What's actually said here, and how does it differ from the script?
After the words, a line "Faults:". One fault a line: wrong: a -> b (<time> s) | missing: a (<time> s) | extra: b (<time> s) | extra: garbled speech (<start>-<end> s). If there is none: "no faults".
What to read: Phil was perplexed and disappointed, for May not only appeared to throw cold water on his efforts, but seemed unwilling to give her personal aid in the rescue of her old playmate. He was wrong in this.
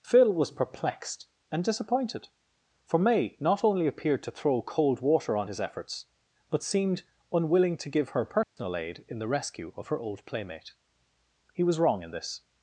Phil was perplexed and disappointed, for May not only appeared to throw cold water on his efforts, but seemed unwilling to give her personal aid in the rescue of her old playmate. He was wrong in this.
Faults:
no faults